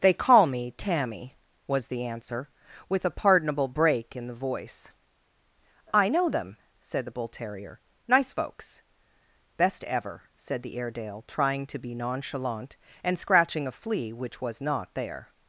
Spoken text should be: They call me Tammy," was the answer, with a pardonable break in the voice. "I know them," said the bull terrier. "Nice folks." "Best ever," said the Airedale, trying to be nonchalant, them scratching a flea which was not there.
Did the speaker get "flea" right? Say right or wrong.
right